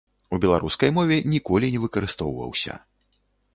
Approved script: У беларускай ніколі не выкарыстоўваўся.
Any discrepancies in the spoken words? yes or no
yes